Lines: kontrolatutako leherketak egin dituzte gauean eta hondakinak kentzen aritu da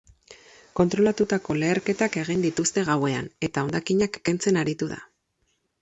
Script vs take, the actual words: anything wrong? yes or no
no